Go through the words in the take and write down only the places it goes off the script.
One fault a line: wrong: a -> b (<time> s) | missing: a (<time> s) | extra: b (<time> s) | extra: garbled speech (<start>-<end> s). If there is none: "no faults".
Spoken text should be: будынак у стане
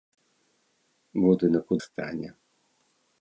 no faults